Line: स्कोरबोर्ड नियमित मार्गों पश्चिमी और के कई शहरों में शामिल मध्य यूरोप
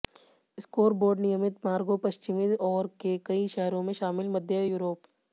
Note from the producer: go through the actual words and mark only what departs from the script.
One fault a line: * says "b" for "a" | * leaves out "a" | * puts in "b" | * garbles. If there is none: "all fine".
all fine